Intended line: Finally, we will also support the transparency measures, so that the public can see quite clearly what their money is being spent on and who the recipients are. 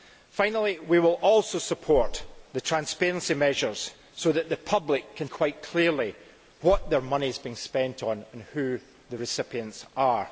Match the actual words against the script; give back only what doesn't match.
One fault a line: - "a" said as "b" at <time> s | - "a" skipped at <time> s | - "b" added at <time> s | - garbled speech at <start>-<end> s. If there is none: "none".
- "see" skipped at 5.3 s